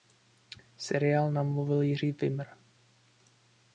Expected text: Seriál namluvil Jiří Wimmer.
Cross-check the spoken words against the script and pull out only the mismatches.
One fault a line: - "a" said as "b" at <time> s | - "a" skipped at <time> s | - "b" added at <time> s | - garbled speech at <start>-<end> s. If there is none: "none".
none